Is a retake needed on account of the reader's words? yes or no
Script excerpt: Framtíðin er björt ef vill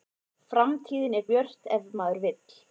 yes